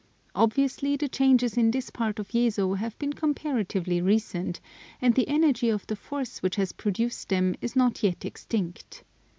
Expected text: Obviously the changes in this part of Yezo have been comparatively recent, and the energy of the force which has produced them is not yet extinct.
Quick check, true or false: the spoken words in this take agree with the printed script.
true